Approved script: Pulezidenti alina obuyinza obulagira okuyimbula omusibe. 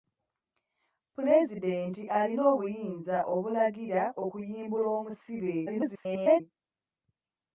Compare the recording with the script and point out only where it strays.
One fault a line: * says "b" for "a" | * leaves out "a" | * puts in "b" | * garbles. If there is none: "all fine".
* garbles